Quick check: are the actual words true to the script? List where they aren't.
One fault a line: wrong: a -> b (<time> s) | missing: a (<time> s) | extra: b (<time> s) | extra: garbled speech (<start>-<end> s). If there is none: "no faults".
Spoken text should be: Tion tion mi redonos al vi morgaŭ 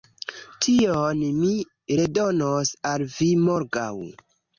missing: tion (1.2 s)